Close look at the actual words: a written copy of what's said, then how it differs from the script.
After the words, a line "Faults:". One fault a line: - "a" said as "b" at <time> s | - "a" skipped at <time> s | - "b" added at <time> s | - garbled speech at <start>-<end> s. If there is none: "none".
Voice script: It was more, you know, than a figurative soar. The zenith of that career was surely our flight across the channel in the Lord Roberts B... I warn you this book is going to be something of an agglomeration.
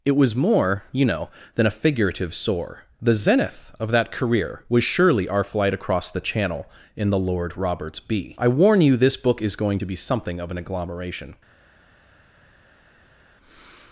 It was more, you know, than a figurative soar. The zenith of that career was surely our flight across the channel in the Lord Roberts B... I warn you this book is going to be something of an agglomeration.
Faults:
none